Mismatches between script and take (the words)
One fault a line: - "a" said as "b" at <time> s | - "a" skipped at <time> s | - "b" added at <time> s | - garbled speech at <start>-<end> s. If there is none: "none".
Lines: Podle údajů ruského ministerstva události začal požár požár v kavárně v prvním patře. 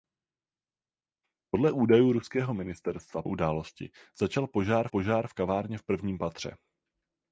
none